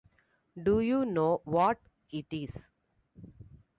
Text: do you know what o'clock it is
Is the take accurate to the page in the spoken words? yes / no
no